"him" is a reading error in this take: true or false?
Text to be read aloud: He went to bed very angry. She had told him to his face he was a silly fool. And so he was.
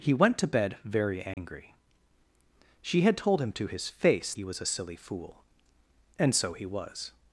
false